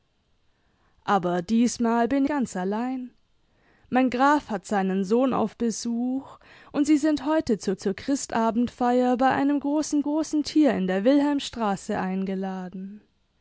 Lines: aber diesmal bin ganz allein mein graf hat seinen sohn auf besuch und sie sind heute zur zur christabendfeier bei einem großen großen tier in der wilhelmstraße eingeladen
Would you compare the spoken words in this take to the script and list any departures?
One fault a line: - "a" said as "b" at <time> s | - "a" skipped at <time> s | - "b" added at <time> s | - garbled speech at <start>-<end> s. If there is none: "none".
none